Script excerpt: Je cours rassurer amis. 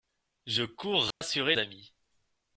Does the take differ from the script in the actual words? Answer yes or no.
no